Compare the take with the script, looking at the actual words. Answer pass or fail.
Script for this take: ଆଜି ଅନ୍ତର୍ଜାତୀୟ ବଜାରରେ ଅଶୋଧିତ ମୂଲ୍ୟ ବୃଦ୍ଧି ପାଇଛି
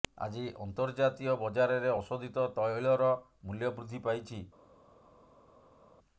fail